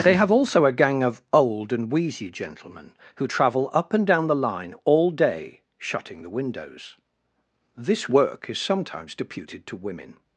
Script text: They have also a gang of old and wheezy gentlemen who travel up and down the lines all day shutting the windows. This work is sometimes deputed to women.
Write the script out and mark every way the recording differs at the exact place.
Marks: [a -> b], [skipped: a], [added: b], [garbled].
They have also a gang of old and wheezy gentlemen who travel up and down the [lines -> line] all day shutting the windows. This work is sometimes deputed to women.